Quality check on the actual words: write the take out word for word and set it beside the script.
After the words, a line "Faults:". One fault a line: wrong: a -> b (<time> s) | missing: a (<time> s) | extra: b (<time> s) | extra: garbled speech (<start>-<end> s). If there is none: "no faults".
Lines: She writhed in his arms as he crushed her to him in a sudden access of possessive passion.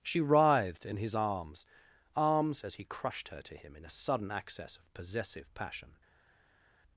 She writhed in his arms arms as he crushed her to him in a sudden access of possessive passion.
Faults:
extra: arms (2.1 s)